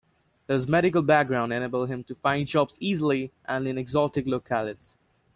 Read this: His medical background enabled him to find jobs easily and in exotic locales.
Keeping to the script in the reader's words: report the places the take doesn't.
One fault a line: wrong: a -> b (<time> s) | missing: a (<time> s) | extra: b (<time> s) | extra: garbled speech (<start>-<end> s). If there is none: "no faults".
no faults